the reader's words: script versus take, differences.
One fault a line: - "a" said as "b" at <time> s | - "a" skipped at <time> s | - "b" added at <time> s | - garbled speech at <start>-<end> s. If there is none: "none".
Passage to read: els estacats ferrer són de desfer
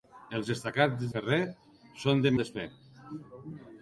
none